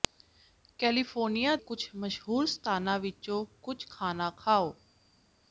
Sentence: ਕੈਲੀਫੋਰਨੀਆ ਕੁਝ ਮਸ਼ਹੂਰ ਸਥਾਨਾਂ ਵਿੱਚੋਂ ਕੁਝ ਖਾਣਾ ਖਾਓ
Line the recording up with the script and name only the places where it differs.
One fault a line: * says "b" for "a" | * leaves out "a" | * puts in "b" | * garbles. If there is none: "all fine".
all fine